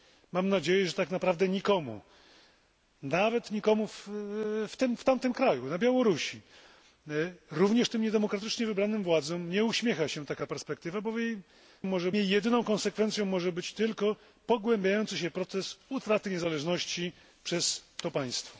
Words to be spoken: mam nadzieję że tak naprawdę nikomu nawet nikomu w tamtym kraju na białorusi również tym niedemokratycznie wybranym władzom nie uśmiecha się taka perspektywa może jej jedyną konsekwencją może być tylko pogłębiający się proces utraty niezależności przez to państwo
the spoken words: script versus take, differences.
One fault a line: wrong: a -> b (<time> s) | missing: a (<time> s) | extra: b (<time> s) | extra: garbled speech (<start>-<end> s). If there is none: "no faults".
no faults